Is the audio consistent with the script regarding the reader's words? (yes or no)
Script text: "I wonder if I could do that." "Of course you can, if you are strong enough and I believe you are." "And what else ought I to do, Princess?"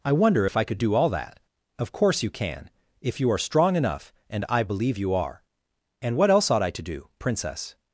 no